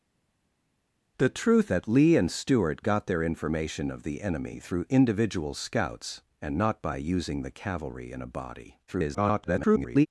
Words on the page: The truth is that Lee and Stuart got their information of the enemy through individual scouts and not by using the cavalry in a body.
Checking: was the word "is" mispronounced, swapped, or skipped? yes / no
yes